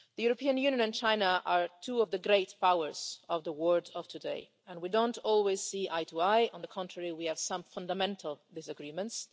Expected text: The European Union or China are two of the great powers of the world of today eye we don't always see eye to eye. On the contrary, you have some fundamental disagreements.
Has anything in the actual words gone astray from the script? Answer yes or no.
yes